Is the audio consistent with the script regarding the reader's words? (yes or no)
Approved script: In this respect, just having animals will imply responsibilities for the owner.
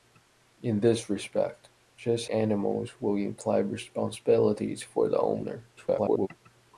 no